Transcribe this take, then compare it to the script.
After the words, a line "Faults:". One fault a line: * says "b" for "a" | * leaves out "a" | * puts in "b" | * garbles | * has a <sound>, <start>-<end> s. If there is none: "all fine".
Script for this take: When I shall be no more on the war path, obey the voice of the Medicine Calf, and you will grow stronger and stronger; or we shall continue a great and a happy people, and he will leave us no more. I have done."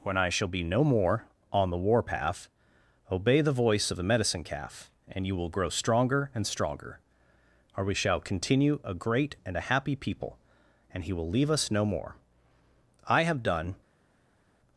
When I shall be no more on the war path, obey the voice of the Medicine Calf, and you will grow stronger and stronger; or we shall continue a great and a happy people, and he will leave us no more. I have done."
Faults:
all fine